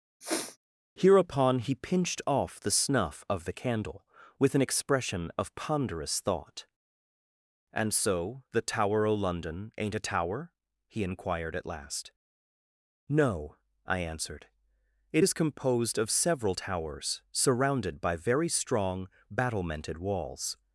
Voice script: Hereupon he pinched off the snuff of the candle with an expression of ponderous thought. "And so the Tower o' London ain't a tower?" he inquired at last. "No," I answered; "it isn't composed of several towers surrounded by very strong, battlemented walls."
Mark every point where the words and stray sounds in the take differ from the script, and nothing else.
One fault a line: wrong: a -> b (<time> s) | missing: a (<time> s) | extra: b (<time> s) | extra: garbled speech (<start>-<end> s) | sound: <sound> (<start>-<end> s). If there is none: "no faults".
sound: sniff (0.2-0.6 s)
wrong: isn't -> is (15.2 s)